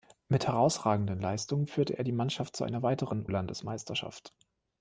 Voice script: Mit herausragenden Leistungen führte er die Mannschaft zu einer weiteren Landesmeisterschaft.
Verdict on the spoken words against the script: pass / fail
pass